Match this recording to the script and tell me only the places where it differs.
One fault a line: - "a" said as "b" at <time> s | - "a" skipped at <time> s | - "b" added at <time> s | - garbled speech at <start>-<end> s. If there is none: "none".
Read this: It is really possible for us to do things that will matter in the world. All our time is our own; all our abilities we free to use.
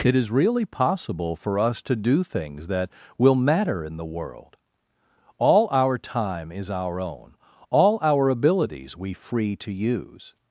none